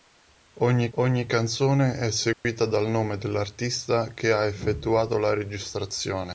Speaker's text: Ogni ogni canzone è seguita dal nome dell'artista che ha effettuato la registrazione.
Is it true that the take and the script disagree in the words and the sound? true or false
true